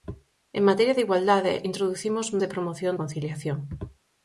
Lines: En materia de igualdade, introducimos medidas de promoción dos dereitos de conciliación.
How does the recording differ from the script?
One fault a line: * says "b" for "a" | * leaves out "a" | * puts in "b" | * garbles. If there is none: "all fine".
* leaves out "medidas"
* leaves out "dos dereitos de"